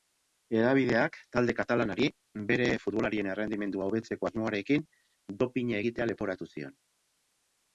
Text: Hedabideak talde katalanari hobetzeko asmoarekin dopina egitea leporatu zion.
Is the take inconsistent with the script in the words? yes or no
yes